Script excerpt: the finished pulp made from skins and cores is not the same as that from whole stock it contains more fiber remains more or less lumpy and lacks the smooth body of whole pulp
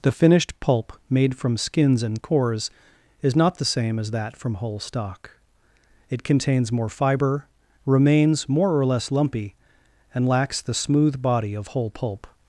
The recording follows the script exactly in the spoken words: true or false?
true